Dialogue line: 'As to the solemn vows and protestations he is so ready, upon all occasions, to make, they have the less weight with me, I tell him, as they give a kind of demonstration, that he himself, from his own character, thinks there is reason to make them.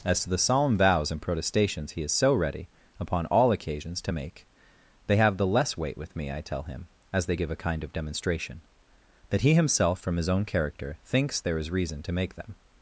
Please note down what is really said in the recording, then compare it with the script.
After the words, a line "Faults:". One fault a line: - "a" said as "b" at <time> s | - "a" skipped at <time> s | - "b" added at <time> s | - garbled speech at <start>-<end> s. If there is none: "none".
'As to the solemn vows and protestations he is so ready, upon all occasions, to make, they have the less weight with me, I tell him, as they give a kind of demonstration, that he himself, from his own character, thinks there is reason to make them.
Faults:
none